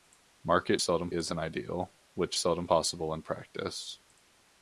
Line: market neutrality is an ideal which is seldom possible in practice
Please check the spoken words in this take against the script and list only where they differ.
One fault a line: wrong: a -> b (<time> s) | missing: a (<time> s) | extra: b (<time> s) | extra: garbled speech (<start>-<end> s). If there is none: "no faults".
wrong: neutrality -> seldom (0.8 s)
missing: is (2.4 s)